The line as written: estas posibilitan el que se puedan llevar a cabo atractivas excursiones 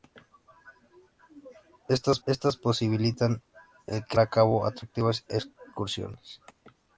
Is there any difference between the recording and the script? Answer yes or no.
yes